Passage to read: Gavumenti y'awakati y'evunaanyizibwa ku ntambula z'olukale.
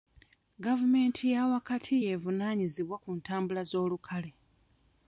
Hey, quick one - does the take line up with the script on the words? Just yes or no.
yes